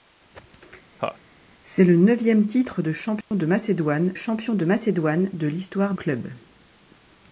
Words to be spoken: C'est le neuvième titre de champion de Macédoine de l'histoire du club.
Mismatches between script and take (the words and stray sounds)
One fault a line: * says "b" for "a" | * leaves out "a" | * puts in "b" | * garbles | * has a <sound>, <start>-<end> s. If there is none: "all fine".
* has a laugh, 1.0-1.2 s
* has a dropout, 3.2-3.3 s
* puts in "champion"
* puts in "Macédoine de"
* leaves out "du"